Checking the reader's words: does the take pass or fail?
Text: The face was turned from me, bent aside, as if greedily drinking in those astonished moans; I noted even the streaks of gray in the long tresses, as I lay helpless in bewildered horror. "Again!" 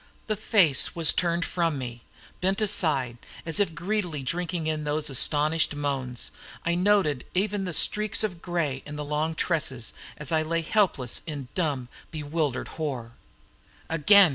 fail